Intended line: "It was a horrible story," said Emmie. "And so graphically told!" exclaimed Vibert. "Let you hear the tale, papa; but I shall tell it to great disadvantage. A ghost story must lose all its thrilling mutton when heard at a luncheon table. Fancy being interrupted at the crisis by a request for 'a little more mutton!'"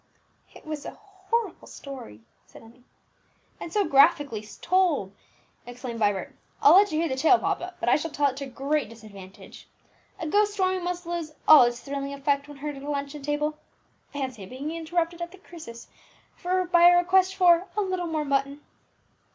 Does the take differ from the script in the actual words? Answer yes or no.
yes